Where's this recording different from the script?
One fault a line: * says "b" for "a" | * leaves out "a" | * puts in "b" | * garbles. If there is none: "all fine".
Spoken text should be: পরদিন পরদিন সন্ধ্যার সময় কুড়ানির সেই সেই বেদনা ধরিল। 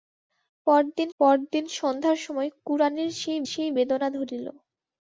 all fine